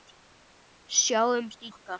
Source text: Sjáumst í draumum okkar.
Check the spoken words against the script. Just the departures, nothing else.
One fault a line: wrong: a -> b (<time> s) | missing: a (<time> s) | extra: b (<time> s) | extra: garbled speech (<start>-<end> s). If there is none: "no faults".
missing: draumum (1.7 s)